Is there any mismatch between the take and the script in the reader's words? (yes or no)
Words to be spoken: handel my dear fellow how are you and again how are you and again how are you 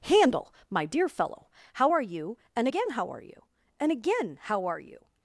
no